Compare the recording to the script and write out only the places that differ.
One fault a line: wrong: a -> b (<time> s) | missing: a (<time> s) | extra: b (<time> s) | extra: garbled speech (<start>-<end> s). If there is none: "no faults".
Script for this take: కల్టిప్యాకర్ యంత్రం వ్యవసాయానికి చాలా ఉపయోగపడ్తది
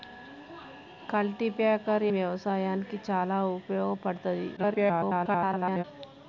missing: యంత్రం (2.0 s)
extra: garbled speech (4.6-5.8 s)